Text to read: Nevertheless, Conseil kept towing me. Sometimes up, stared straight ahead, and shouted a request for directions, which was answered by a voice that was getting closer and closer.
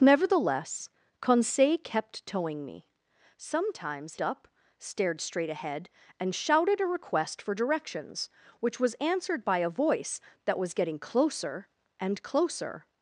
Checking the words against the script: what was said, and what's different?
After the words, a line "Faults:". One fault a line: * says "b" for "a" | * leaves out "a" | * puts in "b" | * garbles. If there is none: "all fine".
Nevertheless, Conseil kept towing me. Sometimes up, stared straight ahead, and shouted a request for directions, which was answered by a voice that was getting closer and closer.
Faults:
all fine